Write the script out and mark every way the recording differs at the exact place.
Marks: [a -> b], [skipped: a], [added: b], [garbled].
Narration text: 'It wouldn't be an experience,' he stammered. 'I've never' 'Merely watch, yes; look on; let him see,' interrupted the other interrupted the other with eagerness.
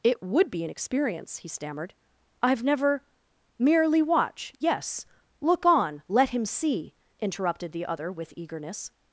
'It [wouldn't -> would] be an experience,' he stammered. 'I've never' 'Merely watch, yes; look on; let him see,' interrupted the other [skipped: interrupted the other] with eagerness.